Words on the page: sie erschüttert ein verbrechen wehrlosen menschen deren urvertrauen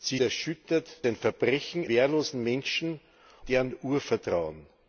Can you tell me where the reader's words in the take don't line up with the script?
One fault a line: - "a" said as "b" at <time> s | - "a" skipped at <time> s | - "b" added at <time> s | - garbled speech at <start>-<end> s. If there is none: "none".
none